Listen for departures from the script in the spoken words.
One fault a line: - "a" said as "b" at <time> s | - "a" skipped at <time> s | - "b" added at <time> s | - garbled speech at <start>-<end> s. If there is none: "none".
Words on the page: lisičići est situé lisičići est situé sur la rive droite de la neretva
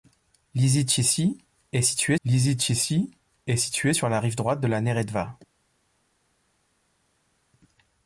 none